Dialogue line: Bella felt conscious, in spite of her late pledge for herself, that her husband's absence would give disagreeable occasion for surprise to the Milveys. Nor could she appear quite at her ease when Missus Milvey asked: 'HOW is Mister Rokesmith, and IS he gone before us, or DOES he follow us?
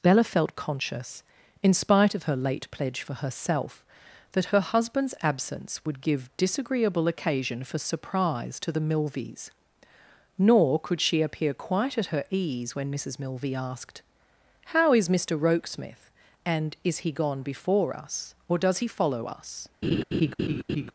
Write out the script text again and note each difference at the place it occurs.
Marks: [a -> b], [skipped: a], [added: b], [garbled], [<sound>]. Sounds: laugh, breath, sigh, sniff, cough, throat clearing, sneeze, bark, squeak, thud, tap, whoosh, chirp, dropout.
Bella felt conscious, in spite of her late pledge for herself, that her husband's absence would give disagreeable occasion for surprise to the Milveys. Nor could she appear quite at her ease when Missus Milvey asked: 'HOW is Mister Rokesmith, and IS he gone before us, or DOES he follow us? [laugh]